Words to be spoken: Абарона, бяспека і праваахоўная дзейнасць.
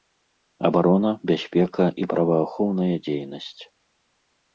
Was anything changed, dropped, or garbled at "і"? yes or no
no